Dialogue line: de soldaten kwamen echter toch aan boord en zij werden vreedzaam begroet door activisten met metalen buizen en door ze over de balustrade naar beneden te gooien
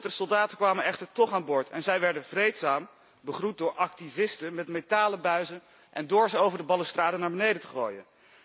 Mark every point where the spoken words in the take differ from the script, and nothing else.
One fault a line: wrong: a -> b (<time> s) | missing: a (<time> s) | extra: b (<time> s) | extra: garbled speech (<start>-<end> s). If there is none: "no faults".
no faults